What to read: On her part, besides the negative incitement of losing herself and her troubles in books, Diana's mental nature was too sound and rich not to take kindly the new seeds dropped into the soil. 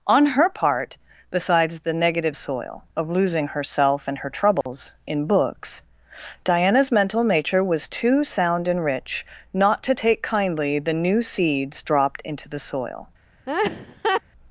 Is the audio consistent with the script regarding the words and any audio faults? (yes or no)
no